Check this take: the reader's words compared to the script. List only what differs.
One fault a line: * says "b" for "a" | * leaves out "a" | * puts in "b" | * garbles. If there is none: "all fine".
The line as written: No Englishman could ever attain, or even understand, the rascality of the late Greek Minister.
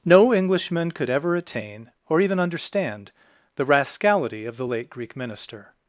all fine